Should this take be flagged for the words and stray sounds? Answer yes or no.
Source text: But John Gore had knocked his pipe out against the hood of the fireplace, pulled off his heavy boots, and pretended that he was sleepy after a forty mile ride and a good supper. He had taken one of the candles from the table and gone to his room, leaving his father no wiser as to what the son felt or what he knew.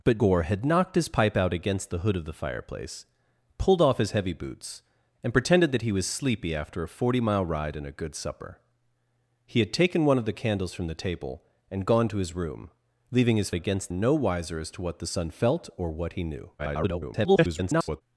yes